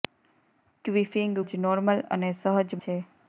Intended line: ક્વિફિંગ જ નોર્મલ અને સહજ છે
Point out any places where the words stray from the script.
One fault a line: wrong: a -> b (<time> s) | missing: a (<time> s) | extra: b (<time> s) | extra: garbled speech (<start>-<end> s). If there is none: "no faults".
no faults